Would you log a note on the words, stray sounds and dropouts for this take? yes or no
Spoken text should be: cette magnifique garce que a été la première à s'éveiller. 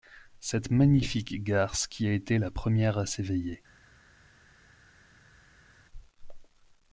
yes